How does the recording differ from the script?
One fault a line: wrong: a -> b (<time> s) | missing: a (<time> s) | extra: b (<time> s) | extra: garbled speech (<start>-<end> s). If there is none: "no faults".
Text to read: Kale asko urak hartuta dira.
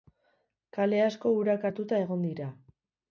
extra: egon (2.0 s)